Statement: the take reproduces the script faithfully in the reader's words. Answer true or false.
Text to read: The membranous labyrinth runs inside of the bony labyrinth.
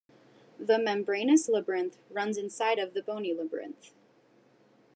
true